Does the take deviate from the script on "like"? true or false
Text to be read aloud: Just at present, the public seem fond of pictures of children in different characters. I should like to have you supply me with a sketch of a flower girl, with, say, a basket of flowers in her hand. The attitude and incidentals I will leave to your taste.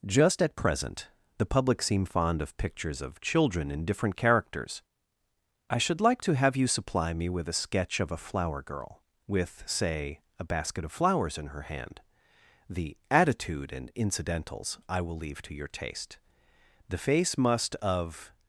false